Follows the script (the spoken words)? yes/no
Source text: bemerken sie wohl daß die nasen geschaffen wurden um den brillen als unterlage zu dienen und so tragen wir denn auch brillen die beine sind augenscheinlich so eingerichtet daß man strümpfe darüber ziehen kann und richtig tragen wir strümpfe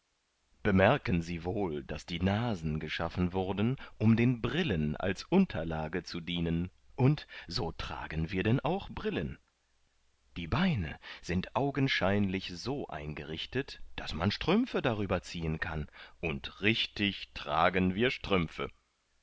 yes